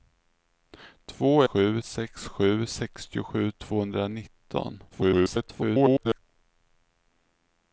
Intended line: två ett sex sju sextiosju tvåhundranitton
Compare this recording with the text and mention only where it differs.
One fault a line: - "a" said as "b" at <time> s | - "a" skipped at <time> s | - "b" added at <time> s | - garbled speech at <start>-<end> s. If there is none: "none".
- "ett" said as "sju" at 1.4 s
- garbled speech at 4.9-6.2 s